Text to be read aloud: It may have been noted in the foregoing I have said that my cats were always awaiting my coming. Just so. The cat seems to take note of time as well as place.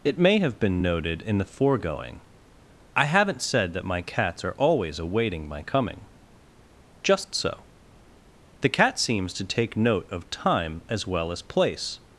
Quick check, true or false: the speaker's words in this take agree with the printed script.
false